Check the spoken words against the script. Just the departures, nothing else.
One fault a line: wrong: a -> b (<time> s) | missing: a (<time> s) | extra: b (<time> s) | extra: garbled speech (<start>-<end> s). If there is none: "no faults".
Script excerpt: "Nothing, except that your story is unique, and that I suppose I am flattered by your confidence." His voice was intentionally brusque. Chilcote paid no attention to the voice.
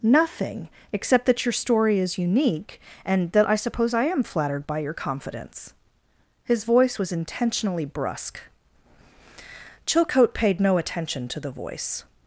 no faults